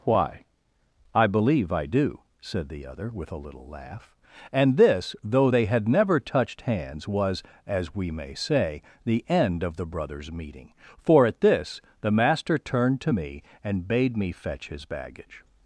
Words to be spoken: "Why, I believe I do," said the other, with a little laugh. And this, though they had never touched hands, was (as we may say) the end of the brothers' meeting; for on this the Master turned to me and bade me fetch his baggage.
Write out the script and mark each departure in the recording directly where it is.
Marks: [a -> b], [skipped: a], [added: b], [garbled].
"Why, I believe I do," said the other, with a little laugh. And this, though they had never touched hands, was (as we may say) the end of the brothers' meeting; for [on -> at] this the Master turned to me and bade me fetch his baggage.